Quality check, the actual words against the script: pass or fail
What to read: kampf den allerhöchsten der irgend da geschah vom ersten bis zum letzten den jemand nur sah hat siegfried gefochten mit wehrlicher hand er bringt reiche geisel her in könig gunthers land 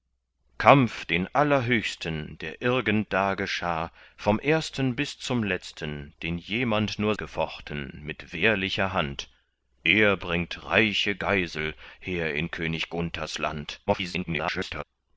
fail